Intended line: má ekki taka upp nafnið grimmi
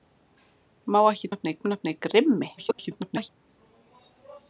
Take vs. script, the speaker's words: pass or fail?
fail